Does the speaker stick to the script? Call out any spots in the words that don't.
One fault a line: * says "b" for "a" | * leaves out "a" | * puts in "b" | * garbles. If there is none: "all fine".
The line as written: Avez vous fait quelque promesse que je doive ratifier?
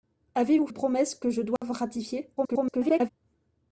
* leaves out "fait quelque"
* garbles